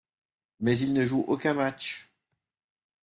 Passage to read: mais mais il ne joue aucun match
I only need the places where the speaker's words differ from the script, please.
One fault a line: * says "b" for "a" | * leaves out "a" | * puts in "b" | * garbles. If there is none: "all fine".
* leaves out "mais"